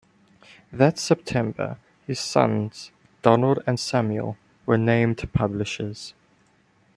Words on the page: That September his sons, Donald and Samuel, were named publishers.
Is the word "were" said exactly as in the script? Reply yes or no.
yes